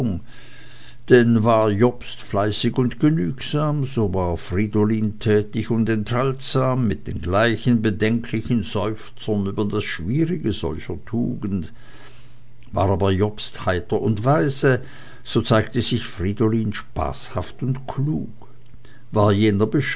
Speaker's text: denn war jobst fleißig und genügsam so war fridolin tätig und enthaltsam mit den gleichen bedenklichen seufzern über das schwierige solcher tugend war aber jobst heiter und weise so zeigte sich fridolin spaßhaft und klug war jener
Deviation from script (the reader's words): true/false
false